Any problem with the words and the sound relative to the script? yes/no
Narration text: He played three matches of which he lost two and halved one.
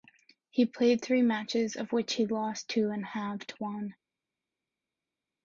no